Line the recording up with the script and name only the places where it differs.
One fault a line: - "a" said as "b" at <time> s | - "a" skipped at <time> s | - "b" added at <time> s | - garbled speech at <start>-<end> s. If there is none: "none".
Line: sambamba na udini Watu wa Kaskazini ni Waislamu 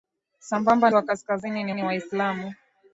- "na udini Watu" skipped at 0.9 s
- "ni" added at 1.7 s